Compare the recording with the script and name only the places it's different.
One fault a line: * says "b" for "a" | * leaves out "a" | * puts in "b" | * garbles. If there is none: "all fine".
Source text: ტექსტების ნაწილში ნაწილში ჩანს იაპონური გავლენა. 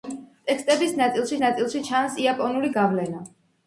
all fine